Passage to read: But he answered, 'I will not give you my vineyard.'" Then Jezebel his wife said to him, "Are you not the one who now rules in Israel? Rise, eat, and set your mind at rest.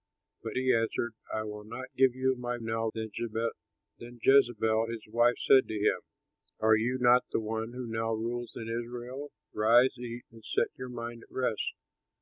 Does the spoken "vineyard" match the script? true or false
false